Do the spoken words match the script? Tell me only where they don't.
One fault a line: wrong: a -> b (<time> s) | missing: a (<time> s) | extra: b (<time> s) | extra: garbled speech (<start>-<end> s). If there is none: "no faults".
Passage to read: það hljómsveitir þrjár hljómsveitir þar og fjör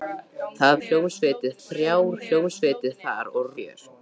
no faults